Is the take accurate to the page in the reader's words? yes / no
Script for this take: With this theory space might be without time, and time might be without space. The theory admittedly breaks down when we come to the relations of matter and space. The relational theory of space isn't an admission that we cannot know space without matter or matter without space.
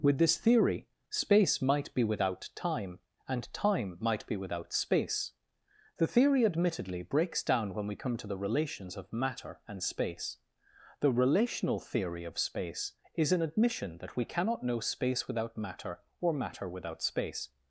no